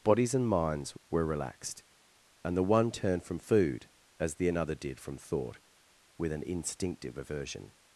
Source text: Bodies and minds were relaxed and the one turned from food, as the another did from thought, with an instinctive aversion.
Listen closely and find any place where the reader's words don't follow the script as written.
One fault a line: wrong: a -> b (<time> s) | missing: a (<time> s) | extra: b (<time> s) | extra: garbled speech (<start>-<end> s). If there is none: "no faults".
no faults